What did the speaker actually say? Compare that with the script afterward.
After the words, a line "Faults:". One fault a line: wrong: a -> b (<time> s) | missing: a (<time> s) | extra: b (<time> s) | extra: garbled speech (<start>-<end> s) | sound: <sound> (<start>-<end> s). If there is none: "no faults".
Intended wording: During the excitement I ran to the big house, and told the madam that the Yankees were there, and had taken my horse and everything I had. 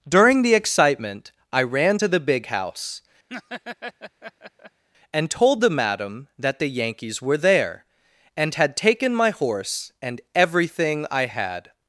During the excitement I ran to the big house, and told the madam that the Yankees were there, and had taken my horse and everything I had.
Faults:
sound: laugh (3.3-4.8 s)